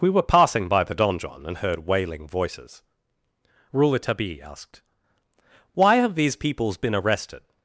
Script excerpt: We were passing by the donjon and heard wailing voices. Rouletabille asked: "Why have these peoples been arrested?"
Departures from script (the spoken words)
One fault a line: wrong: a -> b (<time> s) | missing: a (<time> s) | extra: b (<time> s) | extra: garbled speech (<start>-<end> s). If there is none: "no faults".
no faults